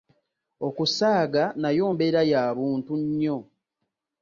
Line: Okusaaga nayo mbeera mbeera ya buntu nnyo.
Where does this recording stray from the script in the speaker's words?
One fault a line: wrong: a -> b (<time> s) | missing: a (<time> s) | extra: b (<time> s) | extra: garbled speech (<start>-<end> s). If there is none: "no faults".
missing: mbeera (2.2 s)